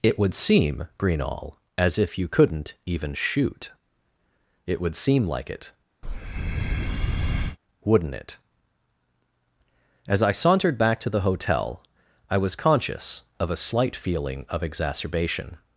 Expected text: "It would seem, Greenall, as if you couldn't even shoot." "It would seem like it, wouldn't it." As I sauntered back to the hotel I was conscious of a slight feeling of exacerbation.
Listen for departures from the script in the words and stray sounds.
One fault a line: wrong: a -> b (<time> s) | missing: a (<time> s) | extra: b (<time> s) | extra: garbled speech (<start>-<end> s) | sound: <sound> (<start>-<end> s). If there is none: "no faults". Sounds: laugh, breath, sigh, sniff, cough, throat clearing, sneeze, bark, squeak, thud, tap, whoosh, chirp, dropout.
sound: breath (6.0-7.6 s)